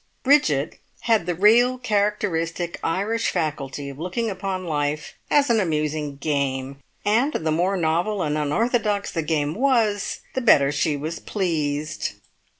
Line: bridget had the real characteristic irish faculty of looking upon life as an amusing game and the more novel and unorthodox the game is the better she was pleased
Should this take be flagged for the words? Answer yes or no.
yes